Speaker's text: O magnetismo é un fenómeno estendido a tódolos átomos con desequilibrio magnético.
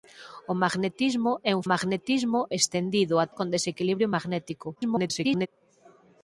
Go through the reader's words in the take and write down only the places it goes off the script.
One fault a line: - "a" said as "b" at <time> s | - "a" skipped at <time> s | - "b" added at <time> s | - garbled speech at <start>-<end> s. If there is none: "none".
- "fenómeno" said as "magnetismo" at 1.7 s
- "tódolos átomos" skipped at 3.3 s
- garbled speech at 4.8-5.5 s